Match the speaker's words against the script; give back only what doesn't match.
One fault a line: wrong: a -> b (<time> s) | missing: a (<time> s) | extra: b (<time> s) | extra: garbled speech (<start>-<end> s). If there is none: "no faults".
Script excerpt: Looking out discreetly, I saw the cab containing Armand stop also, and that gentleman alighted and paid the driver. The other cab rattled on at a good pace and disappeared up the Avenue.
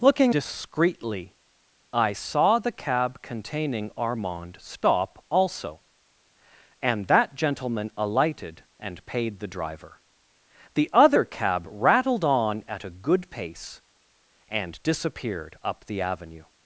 missing: out (0.3 s)